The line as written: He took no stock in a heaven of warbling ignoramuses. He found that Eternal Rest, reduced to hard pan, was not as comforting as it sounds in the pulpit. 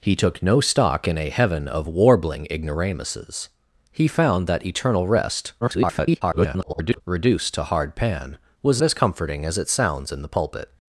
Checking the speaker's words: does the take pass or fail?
fail